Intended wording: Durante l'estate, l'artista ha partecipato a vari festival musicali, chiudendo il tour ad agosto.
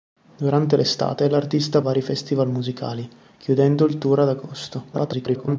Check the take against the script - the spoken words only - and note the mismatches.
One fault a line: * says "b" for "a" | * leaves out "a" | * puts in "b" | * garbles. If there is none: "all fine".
* leaves out "partecipato"
* garbles